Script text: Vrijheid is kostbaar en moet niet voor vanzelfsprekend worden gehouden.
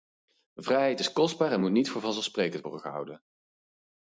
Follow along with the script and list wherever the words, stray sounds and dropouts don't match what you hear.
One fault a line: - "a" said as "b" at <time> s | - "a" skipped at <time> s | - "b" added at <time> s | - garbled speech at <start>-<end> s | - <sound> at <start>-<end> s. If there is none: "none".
none